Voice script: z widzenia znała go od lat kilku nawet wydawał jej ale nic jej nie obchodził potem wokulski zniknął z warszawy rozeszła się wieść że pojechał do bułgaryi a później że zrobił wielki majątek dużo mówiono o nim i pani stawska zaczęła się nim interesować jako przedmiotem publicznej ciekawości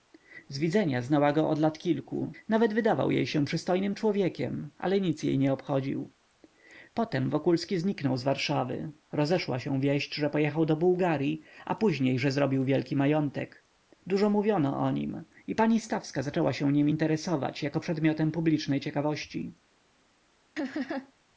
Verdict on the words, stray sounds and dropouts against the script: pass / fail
fail